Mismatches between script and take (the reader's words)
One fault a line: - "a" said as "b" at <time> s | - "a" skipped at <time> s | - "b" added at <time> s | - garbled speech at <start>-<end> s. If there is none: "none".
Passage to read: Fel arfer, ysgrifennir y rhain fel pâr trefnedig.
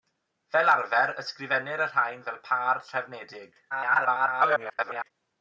- garbled speech at 3.7-5.1 s